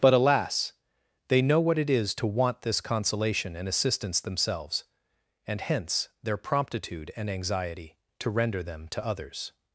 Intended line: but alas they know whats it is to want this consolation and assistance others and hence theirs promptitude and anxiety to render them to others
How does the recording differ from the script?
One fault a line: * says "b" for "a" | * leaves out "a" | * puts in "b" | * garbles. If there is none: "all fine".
* says "what" for "whats"
* says "themselves" for "others"
* says "their" for "theirs"